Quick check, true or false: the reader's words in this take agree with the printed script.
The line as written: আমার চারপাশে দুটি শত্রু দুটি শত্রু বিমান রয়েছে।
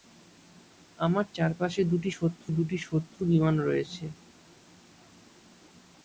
true